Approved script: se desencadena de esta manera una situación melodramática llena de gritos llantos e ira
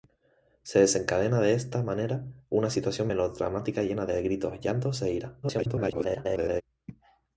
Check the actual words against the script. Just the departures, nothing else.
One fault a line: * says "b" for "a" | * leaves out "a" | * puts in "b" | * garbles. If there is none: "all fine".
* garbles